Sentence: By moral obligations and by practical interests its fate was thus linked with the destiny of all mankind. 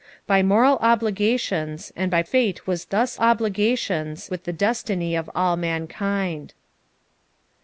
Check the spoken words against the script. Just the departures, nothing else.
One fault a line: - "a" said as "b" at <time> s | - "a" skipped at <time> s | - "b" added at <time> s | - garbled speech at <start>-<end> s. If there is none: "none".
- "practical interests its" skipped at 2.2 s
- "linked" said as "obligations" at 3.2 s